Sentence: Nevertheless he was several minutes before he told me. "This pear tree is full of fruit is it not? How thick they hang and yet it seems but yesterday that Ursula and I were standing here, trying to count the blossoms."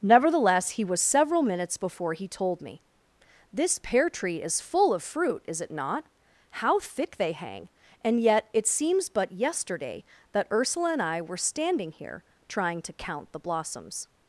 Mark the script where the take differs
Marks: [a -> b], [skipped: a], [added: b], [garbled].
Nevertheless he was several minutes before he told me. "This pear tree is full of fruit is it not? How thick they hang and yet it seems but yesterday that Ursula and I were standing here, trying to count the blossoms."